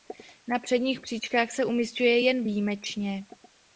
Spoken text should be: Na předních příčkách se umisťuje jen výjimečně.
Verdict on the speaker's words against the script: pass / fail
pass